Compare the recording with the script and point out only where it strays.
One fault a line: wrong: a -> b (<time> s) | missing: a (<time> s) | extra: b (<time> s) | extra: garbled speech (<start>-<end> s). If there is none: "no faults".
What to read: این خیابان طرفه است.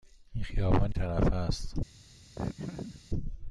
no faults